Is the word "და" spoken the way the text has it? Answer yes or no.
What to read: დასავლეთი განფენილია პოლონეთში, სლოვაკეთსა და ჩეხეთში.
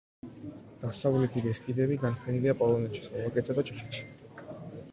yes